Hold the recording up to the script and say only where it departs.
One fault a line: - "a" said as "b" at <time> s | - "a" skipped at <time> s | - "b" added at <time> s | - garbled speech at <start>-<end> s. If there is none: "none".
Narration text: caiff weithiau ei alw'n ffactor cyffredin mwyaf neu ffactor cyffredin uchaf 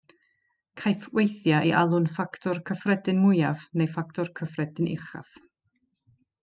none